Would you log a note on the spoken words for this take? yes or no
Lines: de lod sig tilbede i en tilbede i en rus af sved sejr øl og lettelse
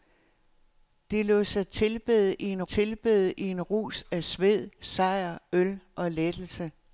no